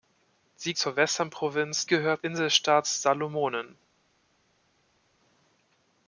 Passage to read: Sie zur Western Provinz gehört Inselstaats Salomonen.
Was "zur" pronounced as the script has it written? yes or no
yes